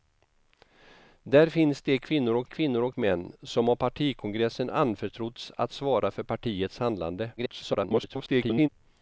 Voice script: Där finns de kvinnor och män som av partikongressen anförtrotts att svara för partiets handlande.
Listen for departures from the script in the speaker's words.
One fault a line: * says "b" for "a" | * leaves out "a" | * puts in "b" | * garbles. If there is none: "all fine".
* puts in "kvinnor och"
* garbles